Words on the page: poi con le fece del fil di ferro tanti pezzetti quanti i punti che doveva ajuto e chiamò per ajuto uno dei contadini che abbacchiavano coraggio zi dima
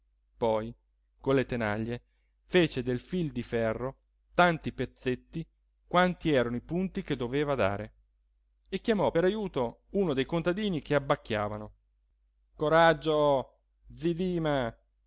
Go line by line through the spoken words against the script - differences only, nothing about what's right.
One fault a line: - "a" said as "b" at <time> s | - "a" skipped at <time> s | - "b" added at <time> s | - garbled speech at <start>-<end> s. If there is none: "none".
- "tenaglie" added at 1.4 s
- "erano" added at 6.3 s
- "ajuto" said as "dare" at 7.5 s